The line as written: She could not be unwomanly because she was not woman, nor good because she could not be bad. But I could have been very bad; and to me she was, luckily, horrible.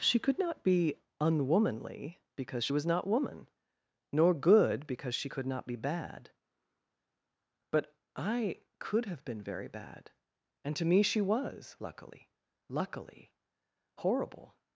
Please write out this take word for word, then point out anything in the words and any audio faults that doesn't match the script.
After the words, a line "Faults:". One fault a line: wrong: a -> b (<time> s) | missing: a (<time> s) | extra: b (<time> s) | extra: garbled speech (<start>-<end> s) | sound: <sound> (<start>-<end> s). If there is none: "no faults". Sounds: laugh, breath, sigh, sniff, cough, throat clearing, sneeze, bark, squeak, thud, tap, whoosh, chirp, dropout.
She could not be unwomanly because she was not woman, nor good because she could not be bad. But I could have been very bad; and to me she was, luckily luckily, horrible.
Faults:
extra: luckily (12.7 s)